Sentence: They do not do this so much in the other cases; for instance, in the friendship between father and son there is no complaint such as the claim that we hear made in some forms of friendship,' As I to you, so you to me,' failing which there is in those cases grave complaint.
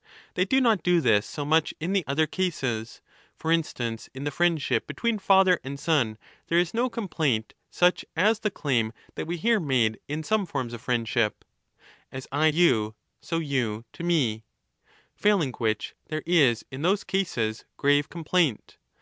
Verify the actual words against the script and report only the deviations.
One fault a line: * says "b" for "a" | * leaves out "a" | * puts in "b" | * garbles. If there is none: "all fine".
* leaves out "to"